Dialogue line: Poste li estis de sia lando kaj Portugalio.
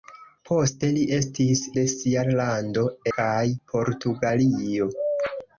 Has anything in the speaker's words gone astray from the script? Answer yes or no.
no